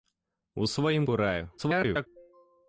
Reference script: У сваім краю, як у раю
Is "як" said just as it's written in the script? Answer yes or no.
no